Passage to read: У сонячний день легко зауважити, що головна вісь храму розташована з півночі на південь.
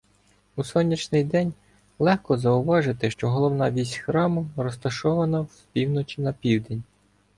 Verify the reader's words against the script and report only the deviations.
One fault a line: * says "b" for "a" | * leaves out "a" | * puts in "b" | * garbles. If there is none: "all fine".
all fine